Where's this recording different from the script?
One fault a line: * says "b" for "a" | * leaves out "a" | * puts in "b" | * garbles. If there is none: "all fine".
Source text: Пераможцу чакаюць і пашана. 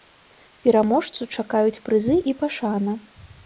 * puts in "прызы"